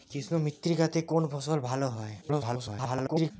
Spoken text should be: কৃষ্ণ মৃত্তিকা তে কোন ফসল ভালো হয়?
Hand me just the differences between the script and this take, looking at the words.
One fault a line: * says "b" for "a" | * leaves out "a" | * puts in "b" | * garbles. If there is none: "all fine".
* garbles